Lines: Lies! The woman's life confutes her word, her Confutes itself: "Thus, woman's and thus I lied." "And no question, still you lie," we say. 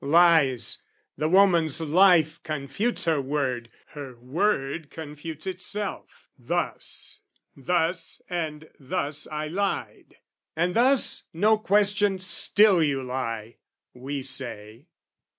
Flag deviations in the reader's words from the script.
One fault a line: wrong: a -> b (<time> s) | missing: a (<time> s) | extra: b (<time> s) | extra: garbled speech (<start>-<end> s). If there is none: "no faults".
extra: word (4.2 s)
wrong: woman's -> thus (7.6 s)
extra: thus (10.7 s)